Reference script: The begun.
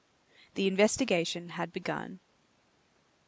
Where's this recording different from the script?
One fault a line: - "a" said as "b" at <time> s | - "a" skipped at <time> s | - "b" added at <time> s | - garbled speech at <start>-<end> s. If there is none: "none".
- "investigation had" added at 0.7 s